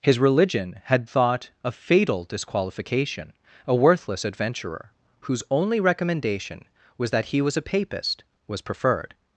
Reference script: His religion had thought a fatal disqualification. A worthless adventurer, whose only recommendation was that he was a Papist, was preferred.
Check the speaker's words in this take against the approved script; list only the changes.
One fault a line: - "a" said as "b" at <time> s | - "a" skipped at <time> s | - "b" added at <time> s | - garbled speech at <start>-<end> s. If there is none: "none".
none